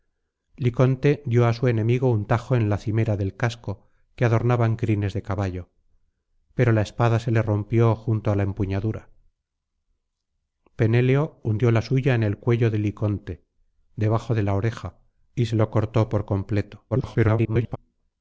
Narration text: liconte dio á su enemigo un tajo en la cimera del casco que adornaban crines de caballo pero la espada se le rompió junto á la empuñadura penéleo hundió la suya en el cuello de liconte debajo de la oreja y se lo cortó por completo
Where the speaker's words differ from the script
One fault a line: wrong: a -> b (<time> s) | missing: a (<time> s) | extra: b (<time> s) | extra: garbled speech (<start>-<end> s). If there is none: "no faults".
extra: garbled speech (16.9-17.8 s)